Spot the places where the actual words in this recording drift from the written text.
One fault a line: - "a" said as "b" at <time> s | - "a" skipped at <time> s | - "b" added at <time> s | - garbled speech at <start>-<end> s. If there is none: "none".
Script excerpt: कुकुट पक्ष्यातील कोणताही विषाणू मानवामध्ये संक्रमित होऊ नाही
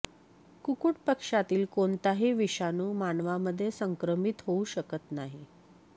- "शकत" added at 4.7 s